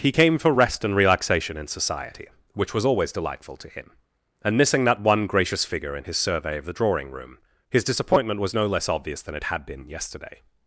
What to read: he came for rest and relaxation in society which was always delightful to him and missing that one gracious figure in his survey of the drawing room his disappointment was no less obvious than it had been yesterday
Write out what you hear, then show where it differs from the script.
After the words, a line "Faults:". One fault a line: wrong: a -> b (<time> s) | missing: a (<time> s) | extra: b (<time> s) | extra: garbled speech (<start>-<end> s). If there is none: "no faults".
he came for rest and relaxation in society which was always delightful to him and missing that one gracious figure in his survey of the drawing room his disappointment was no less obvious than it had been yesterday
Faults:
no faults